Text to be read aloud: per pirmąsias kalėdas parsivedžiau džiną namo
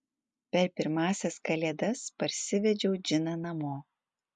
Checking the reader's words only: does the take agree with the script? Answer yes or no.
yes